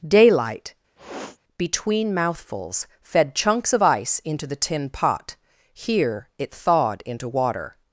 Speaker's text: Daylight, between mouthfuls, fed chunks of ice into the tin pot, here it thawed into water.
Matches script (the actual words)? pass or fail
pass